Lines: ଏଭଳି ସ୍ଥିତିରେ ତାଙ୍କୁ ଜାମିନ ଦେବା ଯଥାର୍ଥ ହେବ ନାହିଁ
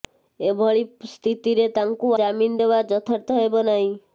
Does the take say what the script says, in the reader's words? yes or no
yes